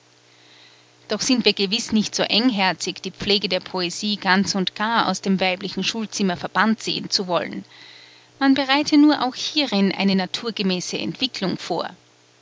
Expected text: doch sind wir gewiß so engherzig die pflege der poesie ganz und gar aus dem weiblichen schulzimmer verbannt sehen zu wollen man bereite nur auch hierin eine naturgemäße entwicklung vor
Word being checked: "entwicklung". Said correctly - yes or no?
yes